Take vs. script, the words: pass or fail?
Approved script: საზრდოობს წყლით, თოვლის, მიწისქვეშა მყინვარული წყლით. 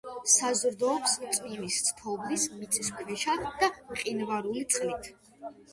fail